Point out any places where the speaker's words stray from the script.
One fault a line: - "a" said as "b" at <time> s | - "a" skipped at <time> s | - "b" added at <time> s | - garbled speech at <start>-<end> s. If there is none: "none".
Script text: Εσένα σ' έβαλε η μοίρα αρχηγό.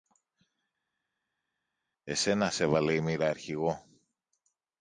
none